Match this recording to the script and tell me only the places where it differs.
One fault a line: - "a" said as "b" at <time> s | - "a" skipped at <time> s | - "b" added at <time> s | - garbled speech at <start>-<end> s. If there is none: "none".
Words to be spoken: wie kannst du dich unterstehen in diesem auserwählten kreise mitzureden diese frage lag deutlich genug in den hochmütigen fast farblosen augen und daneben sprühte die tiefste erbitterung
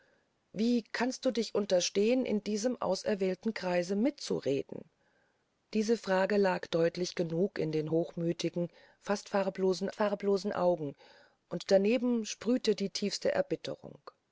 - "farblosen" added at 9.9 s